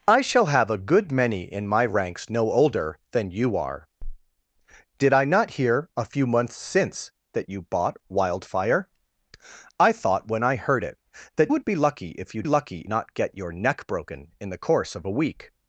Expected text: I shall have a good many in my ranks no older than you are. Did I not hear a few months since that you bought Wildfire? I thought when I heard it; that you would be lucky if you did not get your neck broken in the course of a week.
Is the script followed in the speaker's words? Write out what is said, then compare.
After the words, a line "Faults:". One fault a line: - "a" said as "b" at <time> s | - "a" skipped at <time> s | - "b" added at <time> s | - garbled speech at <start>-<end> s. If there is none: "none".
I shall have a good many in my ranks no older than you are. Did I not hear a few months since that you bought Wildfire? I thought when I heard it; that would be lucky if you lucky not get your neck broken in the course of a week.
Faults:
- "you" skipped at 11.5 s
- "did" said as "lucky" at 12.5 s